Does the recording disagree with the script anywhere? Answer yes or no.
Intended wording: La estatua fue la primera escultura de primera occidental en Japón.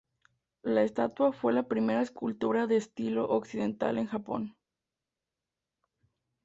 yes